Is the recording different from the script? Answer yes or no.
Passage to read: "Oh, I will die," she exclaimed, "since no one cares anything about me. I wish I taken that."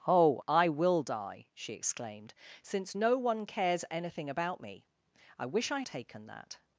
no